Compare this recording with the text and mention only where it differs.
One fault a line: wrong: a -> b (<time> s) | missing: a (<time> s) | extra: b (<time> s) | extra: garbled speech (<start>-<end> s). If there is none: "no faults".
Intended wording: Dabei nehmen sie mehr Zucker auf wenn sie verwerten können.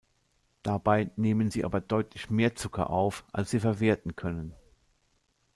extra: aber deutlich (1.6 s)
wrong: wenn -> als (3.3 s)